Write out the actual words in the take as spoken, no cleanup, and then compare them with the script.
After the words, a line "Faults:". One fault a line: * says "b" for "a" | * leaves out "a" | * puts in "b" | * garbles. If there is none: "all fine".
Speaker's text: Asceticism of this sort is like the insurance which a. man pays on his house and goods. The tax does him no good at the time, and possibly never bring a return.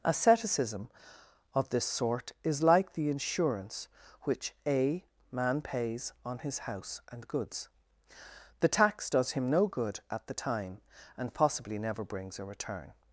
Asceticism of this sort is like the insurance which a. man pays on his house and goods. The tax does him no good at the time, and possibly never brings a return.
Faults:
* says "brings" for "bring"